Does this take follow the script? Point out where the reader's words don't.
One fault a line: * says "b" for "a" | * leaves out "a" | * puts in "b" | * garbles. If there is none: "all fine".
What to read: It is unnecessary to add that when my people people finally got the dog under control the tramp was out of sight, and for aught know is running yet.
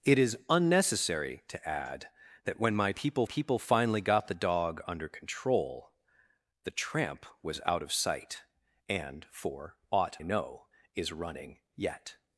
all fine